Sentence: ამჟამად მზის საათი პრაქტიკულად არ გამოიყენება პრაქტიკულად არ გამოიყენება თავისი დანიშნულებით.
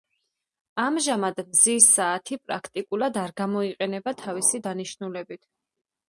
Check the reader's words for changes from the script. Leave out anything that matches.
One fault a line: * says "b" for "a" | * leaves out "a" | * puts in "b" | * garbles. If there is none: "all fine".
* leaves out "პრაქტიკულად არ გამოიყენება"